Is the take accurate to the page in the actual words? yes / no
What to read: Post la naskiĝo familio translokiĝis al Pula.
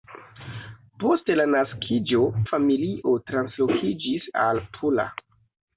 yes